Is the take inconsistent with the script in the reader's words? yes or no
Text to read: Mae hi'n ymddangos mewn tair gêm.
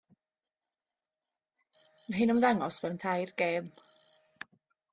no